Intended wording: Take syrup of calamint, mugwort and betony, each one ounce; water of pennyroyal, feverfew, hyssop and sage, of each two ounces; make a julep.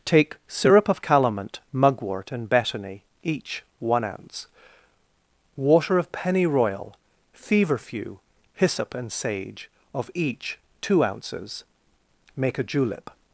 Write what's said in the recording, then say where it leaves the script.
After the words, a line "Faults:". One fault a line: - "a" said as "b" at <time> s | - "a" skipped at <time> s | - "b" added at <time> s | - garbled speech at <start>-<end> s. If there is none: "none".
Take syrup of calamint, mugwort and betony, each one ounce; water of pennyroyal, feverfew, hyssop and sage, of each two ounces; make a julep.
Faults:
none